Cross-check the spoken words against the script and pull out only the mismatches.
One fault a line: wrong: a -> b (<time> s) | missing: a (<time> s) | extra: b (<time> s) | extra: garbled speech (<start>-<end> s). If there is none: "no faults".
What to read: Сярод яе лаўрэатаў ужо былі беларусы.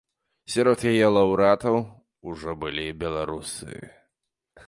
no faults